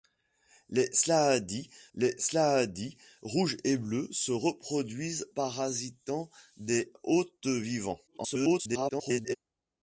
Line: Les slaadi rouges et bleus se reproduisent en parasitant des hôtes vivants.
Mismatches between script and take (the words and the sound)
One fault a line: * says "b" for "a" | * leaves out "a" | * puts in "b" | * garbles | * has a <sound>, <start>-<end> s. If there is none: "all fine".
* puts in "les slaadi"
* leaves out "en"
* garbles